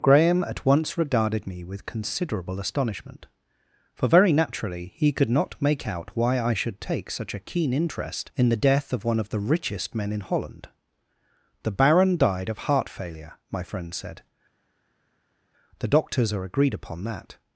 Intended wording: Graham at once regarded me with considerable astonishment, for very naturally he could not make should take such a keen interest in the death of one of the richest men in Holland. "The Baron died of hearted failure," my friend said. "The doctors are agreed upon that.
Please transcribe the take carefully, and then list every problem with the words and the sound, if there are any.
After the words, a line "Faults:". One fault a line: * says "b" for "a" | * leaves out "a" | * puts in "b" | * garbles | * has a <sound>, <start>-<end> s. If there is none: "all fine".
Graham at once regarded me with considerable astonishment, for very naturally he could not make out why I should take such a keen interest in the death of one of the richest men in Holland. "The Baron died of heart failure," my friend said. "The doctors are agreed upon that.
Faults:
* puts in "out why I"
* says "heart" for "hearted"